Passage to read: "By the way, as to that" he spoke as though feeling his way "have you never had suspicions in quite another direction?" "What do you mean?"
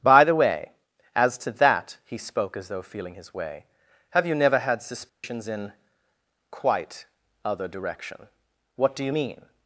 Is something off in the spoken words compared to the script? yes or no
yes